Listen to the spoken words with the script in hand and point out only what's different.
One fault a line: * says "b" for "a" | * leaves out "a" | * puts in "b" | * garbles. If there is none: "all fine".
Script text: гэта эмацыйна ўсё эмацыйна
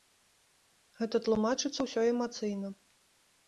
* says "тлумачыцца" for "эмацыйна"